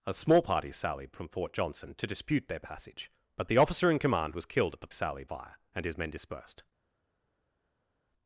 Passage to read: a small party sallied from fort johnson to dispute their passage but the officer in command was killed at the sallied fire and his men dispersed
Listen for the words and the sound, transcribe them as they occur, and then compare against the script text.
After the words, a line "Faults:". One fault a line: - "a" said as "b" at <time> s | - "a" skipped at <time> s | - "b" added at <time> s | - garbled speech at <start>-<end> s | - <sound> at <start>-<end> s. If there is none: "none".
a small party sallied from fort johnson to dispute their passage but the officer in command was killed at the sallied fire and his men dispersed
Faults:
none